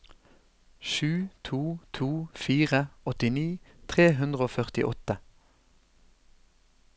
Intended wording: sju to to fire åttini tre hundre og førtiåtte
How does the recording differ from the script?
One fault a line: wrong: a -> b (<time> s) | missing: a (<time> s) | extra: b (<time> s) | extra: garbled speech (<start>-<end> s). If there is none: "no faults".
no faults